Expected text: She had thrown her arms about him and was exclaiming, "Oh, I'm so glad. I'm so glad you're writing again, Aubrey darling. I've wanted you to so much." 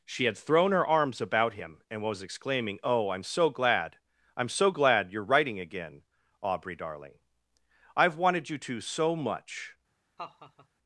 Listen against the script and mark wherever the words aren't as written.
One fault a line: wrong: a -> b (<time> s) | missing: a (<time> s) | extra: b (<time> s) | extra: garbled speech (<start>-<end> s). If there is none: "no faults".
no faults